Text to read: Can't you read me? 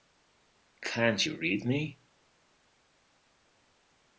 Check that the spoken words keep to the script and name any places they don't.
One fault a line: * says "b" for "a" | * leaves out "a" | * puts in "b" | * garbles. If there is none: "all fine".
all fine